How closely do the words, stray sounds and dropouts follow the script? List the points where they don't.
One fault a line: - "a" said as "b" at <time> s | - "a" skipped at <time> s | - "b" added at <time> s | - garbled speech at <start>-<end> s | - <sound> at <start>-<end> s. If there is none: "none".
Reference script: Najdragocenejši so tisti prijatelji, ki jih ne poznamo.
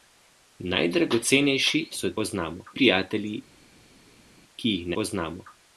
- "tisti" said as "poznamo" at 2.2 s
- "ne" skipped at 4.9 s